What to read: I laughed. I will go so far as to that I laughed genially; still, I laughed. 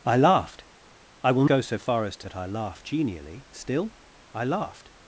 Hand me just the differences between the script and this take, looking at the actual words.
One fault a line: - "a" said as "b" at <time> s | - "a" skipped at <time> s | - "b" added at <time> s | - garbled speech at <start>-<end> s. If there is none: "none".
none